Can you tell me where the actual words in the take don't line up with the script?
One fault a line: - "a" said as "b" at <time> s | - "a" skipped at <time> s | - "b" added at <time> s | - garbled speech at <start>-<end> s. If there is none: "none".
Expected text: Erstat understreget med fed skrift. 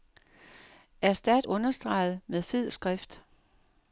none